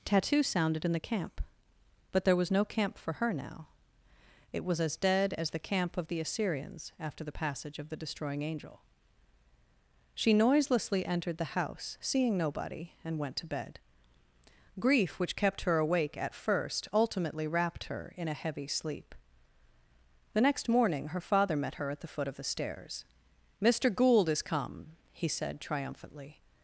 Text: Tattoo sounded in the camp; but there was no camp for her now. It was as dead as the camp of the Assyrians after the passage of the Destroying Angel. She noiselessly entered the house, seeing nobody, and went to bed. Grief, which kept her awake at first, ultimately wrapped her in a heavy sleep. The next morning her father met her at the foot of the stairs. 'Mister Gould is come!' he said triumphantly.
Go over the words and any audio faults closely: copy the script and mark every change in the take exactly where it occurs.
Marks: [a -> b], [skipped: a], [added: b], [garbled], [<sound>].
Tattoo sounded in the camp; but there was no camp for her now. It was as dead as the camp of the Assyrians after the passage of the Destroying Angel. She noiselessly entered the house, seeing nobody, and went to bed. Grief, which kept her awake at first, ultimately wrapped her in a heavy sleep. The next morning her father met her at the foot of the stairs. 'Mister Gould is come!' he said triumphantly.